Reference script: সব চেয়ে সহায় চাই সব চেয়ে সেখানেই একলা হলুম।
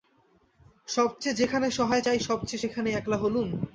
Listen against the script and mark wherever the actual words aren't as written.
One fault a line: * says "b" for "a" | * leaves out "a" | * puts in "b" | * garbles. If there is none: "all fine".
* puts in "যেখানে"